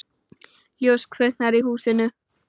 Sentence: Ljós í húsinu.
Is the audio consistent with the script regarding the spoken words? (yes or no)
no